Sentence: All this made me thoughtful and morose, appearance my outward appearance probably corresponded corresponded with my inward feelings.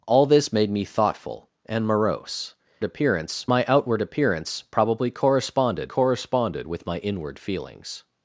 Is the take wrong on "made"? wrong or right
right